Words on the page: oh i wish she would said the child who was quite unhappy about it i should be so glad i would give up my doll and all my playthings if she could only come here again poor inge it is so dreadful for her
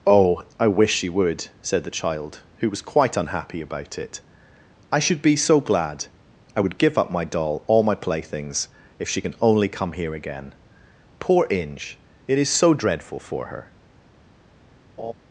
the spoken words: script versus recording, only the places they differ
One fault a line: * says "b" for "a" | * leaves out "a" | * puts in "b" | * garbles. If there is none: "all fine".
* leaves out "and"
* says "can" for "could"